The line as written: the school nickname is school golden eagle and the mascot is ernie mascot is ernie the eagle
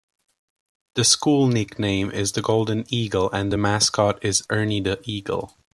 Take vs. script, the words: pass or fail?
fail